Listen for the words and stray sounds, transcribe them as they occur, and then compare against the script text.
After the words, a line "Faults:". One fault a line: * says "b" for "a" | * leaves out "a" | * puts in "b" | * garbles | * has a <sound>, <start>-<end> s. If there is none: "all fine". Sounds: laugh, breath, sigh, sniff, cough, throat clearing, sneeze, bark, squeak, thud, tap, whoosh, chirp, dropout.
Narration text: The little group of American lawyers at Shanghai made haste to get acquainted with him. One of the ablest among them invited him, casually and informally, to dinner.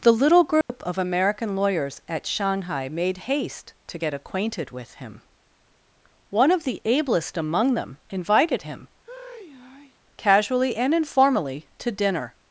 The little group of American lawyers at Shanghai made haste to get acquainted with him. One of the ablest among them invited him, casually and informally, to dinner.
Faults:
* has a dropout, 0.6-0.7 s
* has a sigh, 9.0-10.0 s